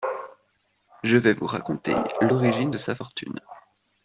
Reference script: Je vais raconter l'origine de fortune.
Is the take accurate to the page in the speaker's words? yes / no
no